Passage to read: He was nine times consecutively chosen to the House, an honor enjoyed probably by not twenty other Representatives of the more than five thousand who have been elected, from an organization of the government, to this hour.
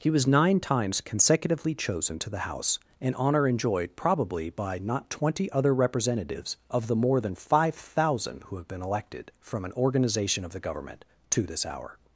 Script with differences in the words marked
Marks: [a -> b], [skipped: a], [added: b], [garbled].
He was nine times consecutively chosen to the House, an honor enjoyed probably by not twenty other Representatives of the more than five thousand who have been elected, from an organization of the government, to this hour.